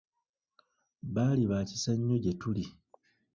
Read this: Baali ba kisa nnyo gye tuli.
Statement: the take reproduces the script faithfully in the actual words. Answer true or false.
true